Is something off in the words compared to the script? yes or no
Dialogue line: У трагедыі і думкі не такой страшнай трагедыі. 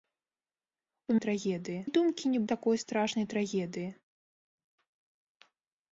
no